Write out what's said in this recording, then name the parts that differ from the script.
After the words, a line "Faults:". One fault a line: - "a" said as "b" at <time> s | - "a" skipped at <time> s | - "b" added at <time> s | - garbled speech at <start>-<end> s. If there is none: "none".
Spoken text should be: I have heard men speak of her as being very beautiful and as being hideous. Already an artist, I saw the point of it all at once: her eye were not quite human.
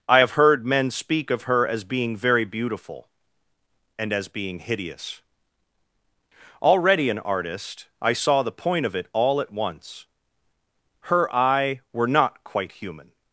I have heard men speak of her as being very beautiful and as being hideous. Already an artist, I saw the point of it all at once: her eye were not quite human.
Faults:
none